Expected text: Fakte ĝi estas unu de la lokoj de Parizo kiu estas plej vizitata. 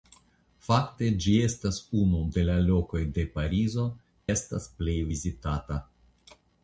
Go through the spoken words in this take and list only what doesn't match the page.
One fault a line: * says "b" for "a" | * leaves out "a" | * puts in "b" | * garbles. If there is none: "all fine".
* leaves out "kiu"